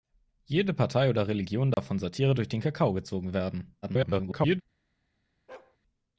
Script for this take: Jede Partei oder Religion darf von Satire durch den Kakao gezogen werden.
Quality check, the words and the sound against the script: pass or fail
fail